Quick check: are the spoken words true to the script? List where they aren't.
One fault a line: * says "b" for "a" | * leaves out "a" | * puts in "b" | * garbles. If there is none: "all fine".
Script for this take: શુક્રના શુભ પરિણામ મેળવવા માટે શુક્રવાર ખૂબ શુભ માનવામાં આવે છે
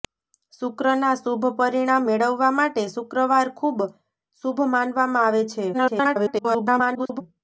* garbles